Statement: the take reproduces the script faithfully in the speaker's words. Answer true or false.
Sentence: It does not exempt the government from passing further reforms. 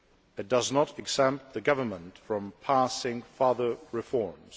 true